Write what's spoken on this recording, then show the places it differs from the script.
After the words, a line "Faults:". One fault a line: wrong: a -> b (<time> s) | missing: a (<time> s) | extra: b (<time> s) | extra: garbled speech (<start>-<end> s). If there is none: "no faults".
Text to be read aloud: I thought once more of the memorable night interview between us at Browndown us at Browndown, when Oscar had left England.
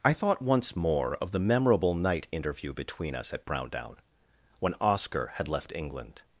I thought once more of the memorable night interview between us at Browndown, when Oscar had left England.
Faults:
missing: us at Browndown (4.0 s)